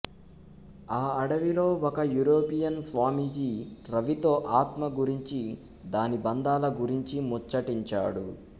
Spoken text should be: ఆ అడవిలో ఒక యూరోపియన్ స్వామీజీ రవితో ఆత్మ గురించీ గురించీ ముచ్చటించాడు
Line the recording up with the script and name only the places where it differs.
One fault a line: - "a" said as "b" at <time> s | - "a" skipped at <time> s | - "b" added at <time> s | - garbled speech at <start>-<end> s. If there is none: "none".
- "దాని బంధాల" added at 5.9 s